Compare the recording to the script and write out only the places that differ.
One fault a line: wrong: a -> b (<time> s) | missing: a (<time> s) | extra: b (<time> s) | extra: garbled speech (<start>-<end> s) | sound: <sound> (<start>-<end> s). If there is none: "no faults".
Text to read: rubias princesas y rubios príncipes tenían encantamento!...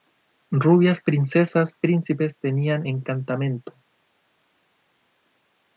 missing: y rubios (1.8 s)